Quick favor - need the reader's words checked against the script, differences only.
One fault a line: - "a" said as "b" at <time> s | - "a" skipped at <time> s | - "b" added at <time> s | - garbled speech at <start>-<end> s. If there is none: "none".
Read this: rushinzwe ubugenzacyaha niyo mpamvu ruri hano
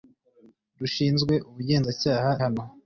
- "niyo mpamvu ruri" skipped at 2.3 s